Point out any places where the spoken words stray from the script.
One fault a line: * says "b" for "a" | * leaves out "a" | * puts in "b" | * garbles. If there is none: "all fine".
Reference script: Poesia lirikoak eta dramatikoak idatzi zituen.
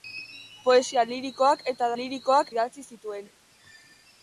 * says "lirikoak" for "dramatikoak"